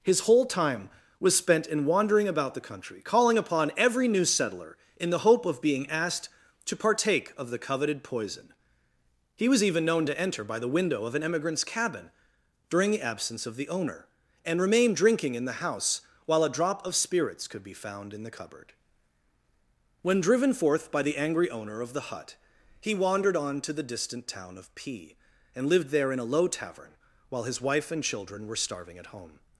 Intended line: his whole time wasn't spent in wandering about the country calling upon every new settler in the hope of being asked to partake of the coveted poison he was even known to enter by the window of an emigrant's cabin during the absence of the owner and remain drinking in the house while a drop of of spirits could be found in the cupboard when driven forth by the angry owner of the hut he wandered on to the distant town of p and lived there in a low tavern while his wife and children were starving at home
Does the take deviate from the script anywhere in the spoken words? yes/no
yes